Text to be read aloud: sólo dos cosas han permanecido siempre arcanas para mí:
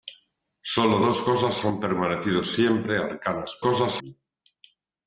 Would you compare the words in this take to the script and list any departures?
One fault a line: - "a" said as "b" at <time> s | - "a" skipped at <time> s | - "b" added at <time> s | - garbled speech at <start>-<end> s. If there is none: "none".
- "para" said as "cosas" at 3.6 s